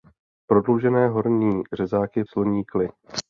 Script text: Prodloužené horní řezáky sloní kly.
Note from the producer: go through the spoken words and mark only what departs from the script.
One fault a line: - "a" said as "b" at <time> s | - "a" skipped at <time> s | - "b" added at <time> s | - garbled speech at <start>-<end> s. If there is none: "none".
none